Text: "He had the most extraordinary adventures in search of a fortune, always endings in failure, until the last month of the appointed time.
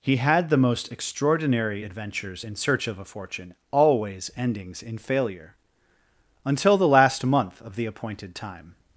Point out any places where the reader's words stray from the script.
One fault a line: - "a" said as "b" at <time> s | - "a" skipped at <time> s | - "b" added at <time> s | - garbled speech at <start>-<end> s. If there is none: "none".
none